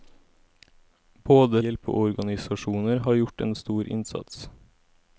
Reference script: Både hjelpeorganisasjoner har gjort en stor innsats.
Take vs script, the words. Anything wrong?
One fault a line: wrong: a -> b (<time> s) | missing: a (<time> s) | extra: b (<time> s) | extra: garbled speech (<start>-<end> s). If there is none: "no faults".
no faults